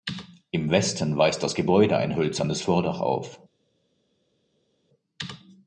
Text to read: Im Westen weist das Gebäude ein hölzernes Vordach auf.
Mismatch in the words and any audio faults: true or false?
false